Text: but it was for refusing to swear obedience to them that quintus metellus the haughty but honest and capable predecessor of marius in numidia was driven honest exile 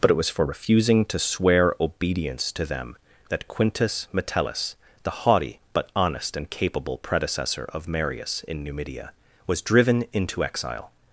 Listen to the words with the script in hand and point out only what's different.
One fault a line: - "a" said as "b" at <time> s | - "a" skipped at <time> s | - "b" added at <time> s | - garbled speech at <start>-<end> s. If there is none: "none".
- "honest" said as "into" at 10.1 s